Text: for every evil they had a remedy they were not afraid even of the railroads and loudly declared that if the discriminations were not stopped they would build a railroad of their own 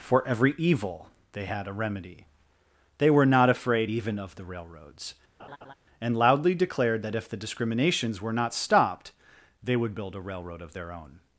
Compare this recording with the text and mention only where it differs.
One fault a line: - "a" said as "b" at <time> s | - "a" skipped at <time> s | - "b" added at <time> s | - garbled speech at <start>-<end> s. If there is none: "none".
none